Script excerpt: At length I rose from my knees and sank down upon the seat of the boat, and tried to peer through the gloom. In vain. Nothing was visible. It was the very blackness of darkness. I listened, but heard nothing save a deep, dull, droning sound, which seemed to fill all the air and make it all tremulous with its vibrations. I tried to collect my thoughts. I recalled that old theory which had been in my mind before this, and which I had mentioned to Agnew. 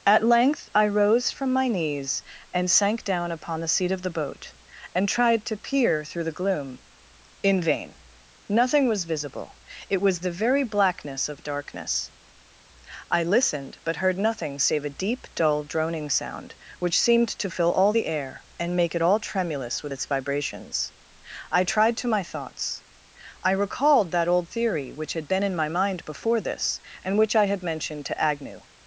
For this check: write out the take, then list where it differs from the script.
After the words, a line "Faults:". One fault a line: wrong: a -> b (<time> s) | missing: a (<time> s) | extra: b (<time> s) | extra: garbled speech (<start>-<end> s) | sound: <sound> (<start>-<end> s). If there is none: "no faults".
At length I rose from my knees and sank down upon the seat of the boat, and tried to peer through the gloom. In vain. Nothing was visible. It was the very blackness of darkness. I listened, but heard nothing save a deep, dull, droning sound, which seemed to fill all the air and make it all tremulous with its vibrations. I tried to my thoughts. I recalled that old theory which had been in my mind before this, and which I had mentioned to Agnew.
Faults:
missing: collect (22.1 s)